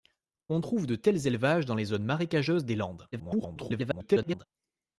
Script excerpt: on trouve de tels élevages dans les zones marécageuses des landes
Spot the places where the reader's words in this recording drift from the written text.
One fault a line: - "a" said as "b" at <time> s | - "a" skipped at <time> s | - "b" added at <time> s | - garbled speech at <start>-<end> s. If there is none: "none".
- garbled speech at 3.1-4.5 s